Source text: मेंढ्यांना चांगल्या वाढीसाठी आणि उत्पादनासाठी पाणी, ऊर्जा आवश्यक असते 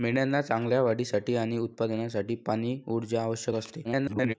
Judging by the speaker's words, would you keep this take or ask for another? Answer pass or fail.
fail